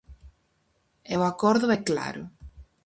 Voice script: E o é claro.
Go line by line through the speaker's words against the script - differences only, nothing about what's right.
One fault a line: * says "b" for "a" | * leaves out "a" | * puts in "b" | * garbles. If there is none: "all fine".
* puts in "acordo"